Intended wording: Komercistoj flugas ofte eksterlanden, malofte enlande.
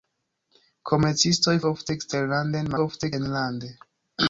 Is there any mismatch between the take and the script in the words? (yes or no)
yes